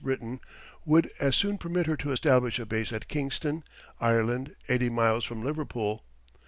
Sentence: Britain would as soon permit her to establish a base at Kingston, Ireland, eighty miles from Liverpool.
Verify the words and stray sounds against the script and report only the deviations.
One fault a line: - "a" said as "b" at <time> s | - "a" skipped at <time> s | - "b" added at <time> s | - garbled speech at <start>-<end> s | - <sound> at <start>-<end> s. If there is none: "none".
none